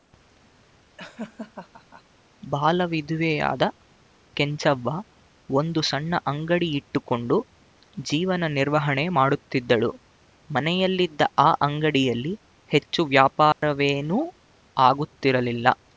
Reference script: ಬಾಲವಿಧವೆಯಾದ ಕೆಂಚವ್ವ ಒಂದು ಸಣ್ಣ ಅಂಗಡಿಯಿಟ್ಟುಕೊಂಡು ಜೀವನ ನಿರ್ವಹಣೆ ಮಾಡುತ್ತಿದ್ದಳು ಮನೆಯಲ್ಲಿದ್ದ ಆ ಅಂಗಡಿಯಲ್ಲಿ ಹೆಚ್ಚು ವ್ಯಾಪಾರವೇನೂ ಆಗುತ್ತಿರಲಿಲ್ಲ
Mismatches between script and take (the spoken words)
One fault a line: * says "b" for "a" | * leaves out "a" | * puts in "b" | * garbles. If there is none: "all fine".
all fine